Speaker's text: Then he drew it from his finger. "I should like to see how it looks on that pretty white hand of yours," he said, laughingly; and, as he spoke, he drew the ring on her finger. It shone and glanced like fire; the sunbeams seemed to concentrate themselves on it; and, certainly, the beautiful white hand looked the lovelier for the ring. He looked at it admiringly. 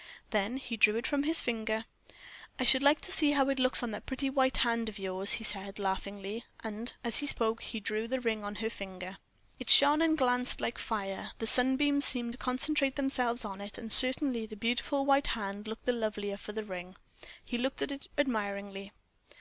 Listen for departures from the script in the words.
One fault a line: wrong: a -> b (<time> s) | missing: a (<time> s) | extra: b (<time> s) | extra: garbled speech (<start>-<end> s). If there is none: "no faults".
no faults